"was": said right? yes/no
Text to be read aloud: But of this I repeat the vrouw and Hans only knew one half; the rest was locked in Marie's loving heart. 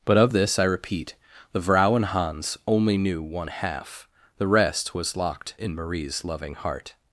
yes